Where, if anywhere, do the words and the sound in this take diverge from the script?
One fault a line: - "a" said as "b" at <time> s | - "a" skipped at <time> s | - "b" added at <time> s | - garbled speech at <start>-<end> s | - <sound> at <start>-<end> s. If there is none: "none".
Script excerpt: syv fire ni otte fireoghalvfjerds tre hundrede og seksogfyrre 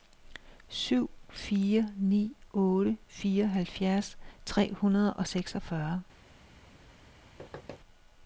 - thud at 7.4-7.8 s